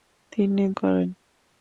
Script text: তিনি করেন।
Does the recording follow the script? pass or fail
pass